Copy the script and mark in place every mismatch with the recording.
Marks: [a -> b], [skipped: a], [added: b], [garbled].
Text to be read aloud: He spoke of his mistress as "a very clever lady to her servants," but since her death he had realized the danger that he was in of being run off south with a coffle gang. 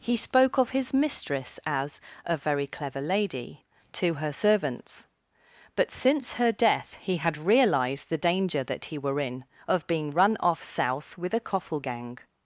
He spoke of his mistress as "a very clever lady to her servants," but since her death he had realized the danger that he [was -> were] in of being run off south with a coffle gang.